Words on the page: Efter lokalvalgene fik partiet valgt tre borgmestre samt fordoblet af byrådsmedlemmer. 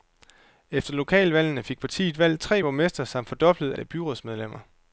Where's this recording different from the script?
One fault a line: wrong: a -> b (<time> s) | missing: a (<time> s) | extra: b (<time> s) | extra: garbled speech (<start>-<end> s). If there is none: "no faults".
no faults